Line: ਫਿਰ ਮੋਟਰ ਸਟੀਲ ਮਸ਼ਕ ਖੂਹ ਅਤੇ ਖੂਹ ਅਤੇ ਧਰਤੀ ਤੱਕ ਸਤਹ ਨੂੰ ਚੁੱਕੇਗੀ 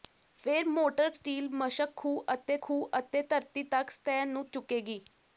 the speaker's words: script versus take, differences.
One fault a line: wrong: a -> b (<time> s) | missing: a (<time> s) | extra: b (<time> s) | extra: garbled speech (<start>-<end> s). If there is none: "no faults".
no faults